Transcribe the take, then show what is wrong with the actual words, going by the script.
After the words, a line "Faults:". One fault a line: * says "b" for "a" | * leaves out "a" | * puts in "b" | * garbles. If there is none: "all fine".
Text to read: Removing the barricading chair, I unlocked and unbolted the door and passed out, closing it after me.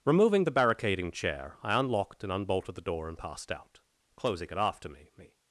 Removing the barricading chair, I unlocked and unbolted the door and passed out, closing it after me me.
Faults:
* puts in "me"